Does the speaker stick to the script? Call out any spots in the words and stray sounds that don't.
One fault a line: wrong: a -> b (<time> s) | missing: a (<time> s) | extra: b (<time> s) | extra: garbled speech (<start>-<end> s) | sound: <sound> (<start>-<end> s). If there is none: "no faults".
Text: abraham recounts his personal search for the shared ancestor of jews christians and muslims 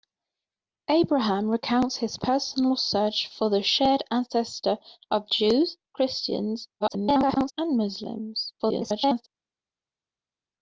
extra: garbled speech (6.8-7.5 s)
extra: garbled speech (8.6-9.3 s)